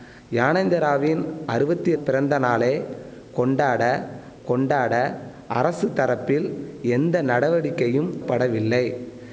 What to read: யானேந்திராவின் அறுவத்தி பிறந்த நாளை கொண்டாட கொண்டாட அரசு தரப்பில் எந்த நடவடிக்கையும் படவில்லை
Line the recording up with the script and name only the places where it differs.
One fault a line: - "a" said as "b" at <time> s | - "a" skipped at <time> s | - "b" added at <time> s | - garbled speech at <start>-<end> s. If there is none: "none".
none